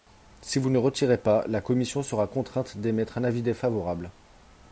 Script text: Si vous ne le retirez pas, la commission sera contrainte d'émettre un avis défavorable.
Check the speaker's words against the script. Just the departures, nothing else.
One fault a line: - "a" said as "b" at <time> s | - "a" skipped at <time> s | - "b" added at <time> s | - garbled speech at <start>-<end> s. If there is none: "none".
none